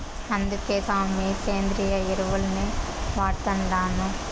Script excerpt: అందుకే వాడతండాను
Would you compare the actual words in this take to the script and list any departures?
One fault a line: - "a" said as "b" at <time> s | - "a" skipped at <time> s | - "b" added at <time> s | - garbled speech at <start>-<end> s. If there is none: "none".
- "సామీ సేంద్రియ ఎరువుల్నే" added at 0.8 s